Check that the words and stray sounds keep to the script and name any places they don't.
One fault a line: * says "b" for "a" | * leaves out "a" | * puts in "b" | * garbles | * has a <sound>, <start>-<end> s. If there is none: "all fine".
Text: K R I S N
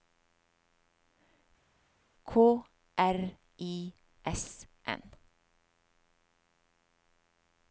all fine